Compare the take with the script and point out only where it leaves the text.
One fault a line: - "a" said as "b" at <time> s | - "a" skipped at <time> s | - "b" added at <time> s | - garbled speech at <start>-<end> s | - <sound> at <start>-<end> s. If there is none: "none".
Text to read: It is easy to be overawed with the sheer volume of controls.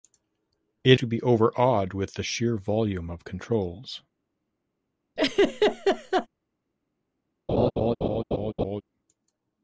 - "is easy" skipped at 1.0 s
- laugh at 5.2-6.3 s
- laugh at 7.5-8.8 s